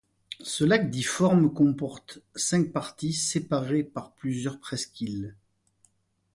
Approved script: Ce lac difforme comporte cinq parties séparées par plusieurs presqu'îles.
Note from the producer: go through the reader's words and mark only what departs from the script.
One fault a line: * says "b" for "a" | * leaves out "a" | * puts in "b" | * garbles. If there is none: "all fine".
all fine